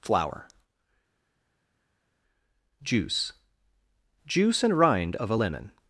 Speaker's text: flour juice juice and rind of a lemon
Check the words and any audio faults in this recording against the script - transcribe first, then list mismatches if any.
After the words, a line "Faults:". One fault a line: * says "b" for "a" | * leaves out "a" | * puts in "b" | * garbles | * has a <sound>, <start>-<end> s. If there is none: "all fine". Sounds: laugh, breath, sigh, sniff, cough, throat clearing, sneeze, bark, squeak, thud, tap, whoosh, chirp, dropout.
flour juice juice and rind of a lemon
Faults:
all fine